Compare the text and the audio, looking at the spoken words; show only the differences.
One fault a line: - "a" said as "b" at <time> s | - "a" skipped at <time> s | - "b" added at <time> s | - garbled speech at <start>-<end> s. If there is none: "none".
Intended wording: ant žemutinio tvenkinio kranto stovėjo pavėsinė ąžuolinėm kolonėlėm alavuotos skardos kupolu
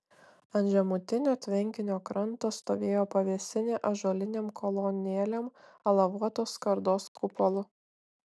none